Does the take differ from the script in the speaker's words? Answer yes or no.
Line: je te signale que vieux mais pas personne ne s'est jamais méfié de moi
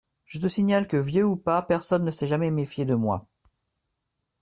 yes